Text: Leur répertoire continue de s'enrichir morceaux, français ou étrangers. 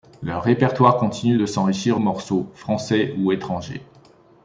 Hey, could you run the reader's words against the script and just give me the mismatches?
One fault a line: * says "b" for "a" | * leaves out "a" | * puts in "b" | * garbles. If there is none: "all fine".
all fine